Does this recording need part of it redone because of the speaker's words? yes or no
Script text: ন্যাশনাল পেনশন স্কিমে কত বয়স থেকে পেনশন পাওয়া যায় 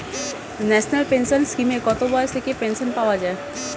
no